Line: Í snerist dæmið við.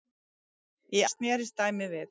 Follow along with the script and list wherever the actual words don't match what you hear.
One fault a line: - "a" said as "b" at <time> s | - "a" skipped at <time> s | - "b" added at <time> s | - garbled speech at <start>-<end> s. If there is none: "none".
none